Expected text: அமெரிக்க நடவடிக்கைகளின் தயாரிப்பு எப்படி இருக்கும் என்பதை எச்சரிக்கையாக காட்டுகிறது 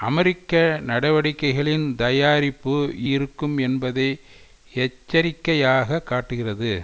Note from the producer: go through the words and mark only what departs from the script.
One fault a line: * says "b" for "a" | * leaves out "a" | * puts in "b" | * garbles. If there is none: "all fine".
* leaves out "எப்படி"